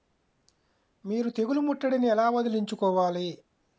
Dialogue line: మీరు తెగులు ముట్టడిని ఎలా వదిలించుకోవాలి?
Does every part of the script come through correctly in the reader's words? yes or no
yes